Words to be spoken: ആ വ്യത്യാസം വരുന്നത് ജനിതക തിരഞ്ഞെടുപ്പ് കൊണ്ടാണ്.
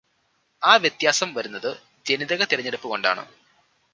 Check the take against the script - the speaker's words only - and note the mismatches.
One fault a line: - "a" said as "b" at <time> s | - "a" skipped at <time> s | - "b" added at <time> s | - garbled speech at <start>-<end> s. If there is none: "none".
none